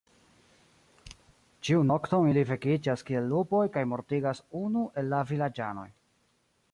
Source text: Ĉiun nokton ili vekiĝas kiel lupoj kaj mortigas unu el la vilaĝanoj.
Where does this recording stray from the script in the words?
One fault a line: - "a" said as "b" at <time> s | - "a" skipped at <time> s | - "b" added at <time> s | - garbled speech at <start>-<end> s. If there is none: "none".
none